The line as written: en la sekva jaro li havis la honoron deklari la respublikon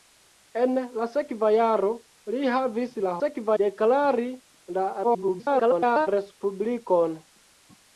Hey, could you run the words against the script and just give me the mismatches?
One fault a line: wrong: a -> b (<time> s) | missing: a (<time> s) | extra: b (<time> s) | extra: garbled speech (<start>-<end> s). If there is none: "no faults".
wrong: honoron -> sekva (3.2 s)
extra: garbled speech (5.0-6.1 s)